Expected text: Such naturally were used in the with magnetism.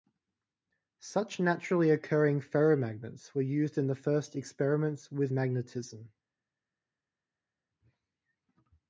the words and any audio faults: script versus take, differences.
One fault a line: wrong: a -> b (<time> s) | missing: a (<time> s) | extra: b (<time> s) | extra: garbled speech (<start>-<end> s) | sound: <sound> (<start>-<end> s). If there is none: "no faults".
extra: occurring ferromagnets (1.9 s)
extra: first experiments (3.9 s)